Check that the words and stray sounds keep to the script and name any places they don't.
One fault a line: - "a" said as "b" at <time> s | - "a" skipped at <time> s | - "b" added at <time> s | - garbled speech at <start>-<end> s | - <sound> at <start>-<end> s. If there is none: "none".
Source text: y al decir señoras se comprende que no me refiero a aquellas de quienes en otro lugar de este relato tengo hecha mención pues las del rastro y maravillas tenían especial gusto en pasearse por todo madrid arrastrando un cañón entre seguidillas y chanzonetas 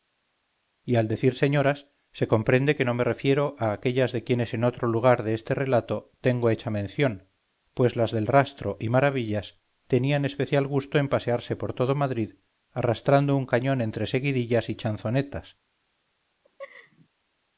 - laugh at 16.4-17.1 s